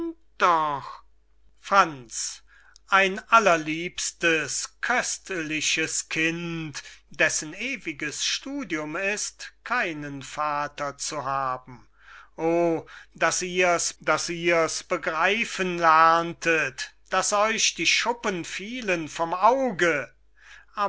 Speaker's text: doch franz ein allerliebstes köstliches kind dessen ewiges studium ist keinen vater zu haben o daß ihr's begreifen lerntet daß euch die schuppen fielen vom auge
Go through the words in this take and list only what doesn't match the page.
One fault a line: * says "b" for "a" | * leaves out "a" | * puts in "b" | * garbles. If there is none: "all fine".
* puts in "daß ihr's"